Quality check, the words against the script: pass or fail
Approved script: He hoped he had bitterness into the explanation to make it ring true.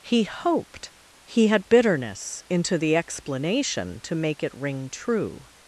pass